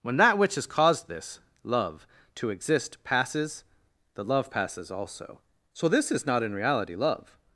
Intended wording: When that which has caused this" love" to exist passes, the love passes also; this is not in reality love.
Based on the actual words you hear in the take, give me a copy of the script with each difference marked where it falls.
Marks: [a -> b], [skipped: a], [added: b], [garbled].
When that which has caused this" love" to exist passes, the love passes also; [added: so] this is not in reality love.